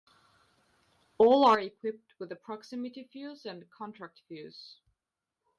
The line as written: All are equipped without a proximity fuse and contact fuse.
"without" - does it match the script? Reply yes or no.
no